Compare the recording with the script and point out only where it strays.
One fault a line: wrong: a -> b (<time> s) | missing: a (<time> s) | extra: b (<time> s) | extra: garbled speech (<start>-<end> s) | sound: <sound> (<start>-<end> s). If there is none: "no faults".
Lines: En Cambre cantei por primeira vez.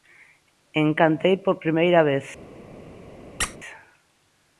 missing: Cambre (0.9 s)
sound: squeak (3.4-3.6 s)